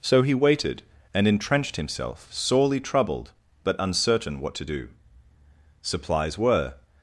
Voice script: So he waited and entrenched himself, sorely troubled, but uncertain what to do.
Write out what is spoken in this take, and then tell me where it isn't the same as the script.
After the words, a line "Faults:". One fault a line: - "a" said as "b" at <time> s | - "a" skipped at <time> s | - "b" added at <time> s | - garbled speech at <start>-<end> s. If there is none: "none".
So he waited and entrenched himself, sorely troubled, but uncertain what to do. Supplies were
Faults:
- "Supplies were" added at 5.8 s